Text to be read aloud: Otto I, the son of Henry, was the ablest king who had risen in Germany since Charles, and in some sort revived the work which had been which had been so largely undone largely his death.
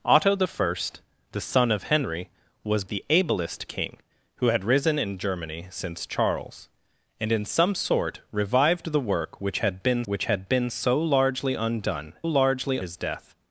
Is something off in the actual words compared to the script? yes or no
no